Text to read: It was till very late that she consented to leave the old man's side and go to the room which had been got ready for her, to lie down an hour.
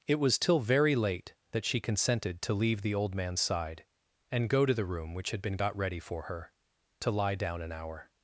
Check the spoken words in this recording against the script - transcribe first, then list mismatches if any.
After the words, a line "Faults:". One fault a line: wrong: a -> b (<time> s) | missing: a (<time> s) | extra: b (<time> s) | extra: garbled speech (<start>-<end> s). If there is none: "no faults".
It was till very late that she consented to leave the old man's side and go to the room which had been got ready for her, to lie down an hour.
Faults:
no faults